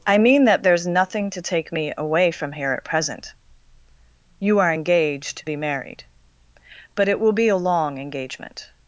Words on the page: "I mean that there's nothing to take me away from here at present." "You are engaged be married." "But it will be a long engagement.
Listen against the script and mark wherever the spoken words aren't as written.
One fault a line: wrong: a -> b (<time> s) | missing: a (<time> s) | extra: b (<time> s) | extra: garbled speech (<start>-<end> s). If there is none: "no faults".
no faults